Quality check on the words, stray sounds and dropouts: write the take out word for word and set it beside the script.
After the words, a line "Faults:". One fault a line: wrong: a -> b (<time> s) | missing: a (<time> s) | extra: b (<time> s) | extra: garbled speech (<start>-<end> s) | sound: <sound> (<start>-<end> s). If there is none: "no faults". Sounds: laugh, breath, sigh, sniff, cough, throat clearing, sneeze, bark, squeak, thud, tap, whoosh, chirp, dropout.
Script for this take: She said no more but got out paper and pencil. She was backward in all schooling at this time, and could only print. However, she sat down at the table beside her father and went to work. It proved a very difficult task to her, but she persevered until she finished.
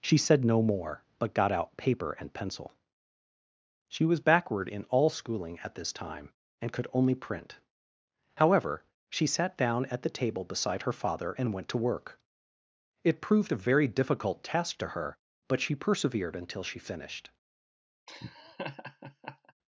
She said no more but got out paper and pencil. She was backward in all schooling at this time, and could only print. However, she sat down at the table beside her father and went to work. It proved a very difficult task to her, but she persevered until she finished.
Faults:
sound: laugh (18.1-19.5 s)